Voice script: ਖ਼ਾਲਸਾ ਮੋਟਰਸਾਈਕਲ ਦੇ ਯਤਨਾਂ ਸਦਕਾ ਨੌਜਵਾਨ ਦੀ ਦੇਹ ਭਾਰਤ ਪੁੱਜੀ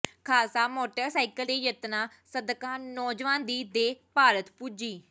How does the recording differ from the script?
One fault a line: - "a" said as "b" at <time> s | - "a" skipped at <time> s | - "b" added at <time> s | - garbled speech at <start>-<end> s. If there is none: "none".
none